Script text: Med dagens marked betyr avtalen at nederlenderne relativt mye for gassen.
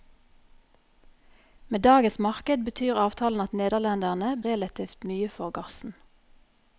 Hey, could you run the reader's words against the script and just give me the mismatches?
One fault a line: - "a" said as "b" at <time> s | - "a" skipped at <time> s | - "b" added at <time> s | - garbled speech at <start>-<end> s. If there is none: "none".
none